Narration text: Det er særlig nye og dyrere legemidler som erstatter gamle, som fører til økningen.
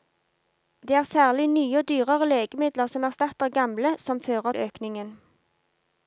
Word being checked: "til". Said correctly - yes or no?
no